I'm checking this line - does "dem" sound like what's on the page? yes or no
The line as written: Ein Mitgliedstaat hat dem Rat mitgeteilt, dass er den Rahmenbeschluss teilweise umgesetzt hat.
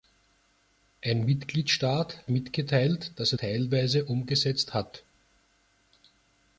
no